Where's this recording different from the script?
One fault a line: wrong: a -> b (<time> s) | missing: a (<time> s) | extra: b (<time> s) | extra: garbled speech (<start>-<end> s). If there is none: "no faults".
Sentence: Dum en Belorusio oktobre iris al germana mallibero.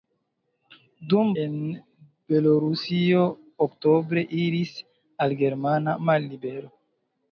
no faults